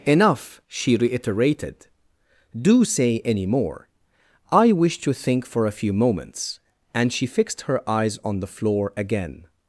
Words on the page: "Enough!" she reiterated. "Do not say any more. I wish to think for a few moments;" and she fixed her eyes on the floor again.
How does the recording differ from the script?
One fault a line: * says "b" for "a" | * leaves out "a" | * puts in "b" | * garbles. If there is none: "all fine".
* leaves out "not"